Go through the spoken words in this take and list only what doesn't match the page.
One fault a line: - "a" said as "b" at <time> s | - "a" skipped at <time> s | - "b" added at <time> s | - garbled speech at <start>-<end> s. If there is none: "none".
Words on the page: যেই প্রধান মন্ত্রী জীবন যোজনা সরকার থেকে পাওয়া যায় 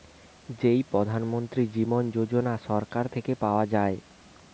none